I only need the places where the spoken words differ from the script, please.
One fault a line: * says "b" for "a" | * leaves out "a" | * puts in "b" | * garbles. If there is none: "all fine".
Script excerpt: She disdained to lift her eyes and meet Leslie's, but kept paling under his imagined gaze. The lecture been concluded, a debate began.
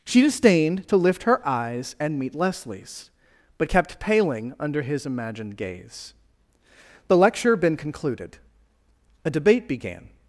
all fine